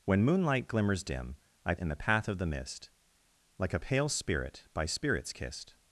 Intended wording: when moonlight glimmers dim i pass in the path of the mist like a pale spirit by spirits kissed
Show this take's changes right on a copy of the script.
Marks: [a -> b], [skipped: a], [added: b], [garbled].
when moonlight glimmers dim i [skipped: pass] in the path of the mist like a pale spirit by spirits kissed